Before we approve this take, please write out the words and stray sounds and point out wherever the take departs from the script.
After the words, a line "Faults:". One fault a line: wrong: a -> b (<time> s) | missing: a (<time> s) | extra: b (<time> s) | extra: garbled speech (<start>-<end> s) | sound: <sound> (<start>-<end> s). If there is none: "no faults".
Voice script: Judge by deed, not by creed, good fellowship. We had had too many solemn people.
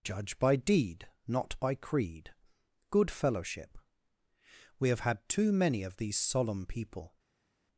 Judge by deed, not by creed, good fellowship. We have had too many of these solemn people.
Faults:
wrong: had -> have (4.9 s)
extra: of these (5.8 s)